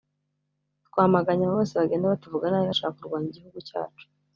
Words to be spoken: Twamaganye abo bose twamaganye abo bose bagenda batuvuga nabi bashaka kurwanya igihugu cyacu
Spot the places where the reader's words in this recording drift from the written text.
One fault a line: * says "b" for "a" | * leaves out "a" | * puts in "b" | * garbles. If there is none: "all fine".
* leaves out "twamaganye abo bose"